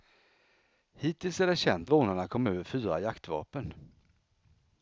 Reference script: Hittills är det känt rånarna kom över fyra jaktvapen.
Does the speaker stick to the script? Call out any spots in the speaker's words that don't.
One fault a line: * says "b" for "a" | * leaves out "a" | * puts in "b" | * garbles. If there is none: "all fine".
all fine